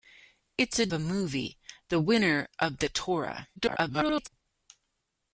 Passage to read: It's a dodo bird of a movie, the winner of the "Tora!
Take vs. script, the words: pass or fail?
fail